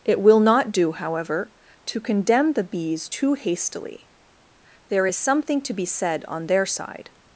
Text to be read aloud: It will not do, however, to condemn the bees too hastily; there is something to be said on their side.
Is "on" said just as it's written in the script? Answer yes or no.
yes